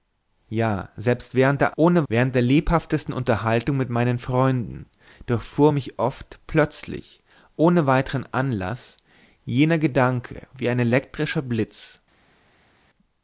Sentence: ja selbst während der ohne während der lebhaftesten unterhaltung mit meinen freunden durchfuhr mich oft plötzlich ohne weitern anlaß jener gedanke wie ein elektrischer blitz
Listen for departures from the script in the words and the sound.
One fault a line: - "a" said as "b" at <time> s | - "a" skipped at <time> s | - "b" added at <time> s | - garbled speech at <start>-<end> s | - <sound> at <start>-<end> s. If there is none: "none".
none